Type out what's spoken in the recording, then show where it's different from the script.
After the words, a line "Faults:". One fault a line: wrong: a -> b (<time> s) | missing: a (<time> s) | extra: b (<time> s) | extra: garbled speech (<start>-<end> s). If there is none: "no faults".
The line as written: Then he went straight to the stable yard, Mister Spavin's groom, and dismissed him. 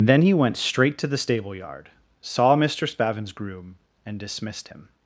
Then he went straight to the stable yard, saw Mister Spavin's groom, and dismissed him.
Faults:
extra: saw (2.2 s)